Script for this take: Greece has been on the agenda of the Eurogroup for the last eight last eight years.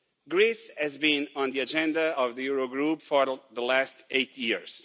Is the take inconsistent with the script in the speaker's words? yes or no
yes